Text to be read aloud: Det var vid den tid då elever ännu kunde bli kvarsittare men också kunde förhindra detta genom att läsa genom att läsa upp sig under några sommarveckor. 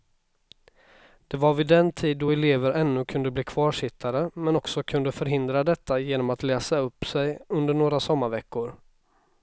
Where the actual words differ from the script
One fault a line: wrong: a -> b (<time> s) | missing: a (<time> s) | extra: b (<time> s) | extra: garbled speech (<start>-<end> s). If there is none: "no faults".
missing: genom att läsa (6.8 s)